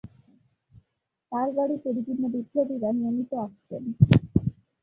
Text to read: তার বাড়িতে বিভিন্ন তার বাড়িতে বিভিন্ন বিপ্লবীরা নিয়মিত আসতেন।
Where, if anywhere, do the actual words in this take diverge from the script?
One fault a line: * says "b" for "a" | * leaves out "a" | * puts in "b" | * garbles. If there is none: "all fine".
* leaves out "তার বাড়িতে বিভিন্ন"